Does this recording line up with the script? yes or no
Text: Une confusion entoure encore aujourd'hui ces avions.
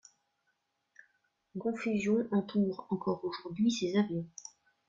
yes